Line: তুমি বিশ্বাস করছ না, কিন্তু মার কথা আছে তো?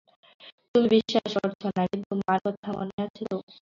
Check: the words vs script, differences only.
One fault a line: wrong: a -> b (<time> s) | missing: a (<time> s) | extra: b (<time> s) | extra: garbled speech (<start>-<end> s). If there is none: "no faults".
extra: মনে (2.8 s)